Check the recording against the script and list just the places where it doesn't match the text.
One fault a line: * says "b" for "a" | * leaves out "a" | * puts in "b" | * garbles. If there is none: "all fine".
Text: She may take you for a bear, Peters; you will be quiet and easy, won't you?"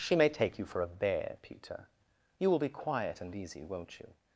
* says "Peter" for "Peters"